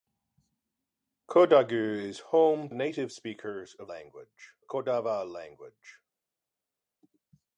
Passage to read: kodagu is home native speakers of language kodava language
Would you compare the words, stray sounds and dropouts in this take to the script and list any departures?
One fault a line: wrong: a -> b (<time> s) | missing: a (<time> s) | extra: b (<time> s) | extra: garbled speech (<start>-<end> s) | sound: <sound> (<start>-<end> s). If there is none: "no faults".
no faults